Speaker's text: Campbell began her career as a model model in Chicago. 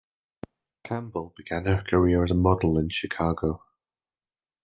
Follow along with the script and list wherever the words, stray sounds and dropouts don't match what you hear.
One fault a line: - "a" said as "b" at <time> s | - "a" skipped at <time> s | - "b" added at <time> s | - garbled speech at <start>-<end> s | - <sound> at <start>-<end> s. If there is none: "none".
- "model" skipped at 2.8 s